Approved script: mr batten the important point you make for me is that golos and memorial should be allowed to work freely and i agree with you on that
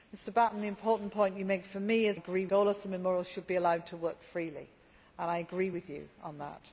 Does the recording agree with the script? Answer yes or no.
no